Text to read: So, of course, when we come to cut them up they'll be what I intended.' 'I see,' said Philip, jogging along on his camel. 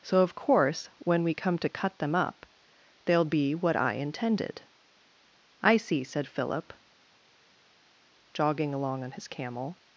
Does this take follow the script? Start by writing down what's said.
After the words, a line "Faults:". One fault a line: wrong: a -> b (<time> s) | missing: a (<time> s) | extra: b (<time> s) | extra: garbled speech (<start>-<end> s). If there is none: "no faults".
So, of course, when we come to cut them up they'll be what I intended.' 'I see,' said Philip, jogging along on his camel.
Faults:
no faults